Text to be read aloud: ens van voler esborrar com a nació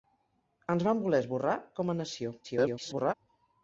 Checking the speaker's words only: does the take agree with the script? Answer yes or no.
no